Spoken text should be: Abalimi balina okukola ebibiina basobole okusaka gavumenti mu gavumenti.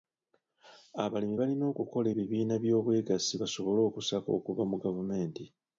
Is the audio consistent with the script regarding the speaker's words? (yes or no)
no